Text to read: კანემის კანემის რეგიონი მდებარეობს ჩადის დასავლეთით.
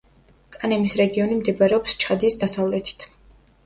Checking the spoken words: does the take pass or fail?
fail